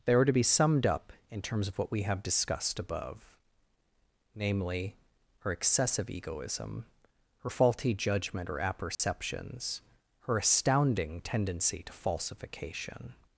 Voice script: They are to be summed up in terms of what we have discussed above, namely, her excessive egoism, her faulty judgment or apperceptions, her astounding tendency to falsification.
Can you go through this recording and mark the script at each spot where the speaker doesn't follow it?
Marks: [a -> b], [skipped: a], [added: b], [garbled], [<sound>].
They are to be summed up in terms of what we have discussed above, namely, her excessive egoism, her faulty judgment or apperceptions, [dropout] her astounding tendency to falsification.